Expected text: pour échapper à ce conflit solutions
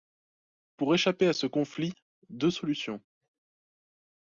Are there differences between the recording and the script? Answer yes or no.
yes